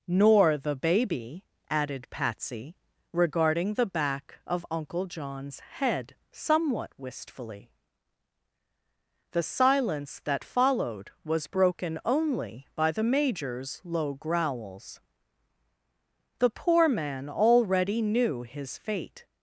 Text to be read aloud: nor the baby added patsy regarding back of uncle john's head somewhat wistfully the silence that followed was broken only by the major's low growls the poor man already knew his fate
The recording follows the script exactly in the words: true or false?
false